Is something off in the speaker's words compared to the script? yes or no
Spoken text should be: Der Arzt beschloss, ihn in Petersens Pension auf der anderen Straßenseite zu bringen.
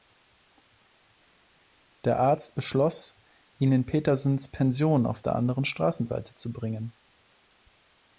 no